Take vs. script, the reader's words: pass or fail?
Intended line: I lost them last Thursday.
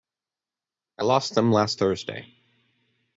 pass